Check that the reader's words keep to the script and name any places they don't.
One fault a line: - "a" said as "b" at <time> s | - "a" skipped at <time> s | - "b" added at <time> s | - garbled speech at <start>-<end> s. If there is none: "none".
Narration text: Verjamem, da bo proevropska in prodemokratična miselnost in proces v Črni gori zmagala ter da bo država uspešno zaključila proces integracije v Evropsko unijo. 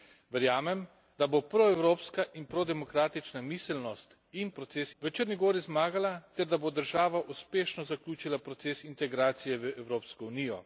none